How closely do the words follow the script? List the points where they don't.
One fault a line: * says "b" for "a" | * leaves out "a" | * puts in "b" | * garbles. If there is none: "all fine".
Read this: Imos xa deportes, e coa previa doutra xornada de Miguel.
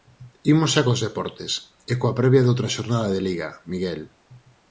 * puts in "cos"
* puts in "Liga"